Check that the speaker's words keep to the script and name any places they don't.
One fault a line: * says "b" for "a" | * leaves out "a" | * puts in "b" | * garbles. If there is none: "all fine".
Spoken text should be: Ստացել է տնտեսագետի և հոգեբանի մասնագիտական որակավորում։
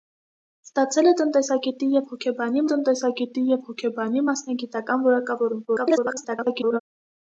* puts in "տնտեսագետի և հոգեբանի"
* garbles